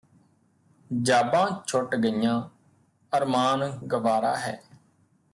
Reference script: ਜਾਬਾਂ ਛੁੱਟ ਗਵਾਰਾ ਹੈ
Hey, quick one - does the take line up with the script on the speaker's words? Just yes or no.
no